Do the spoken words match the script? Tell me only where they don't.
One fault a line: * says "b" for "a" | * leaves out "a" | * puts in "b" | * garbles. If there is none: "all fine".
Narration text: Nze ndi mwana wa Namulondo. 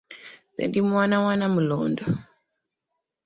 all fine